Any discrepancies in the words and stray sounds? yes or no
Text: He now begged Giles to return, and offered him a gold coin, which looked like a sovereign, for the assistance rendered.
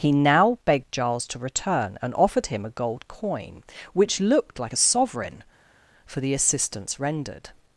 no